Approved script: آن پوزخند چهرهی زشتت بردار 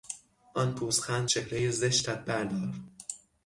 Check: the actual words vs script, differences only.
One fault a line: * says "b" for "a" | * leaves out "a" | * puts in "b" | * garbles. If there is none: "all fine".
all fine